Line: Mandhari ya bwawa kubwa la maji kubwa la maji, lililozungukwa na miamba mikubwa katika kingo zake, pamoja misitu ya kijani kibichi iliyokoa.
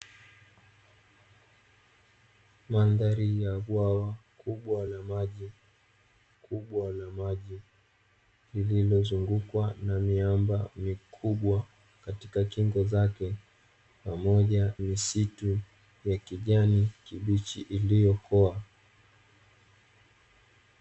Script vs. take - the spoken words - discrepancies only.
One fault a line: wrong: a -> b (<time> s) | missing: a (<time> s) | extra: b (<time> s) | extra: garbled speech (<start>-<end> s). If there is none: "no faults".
no faults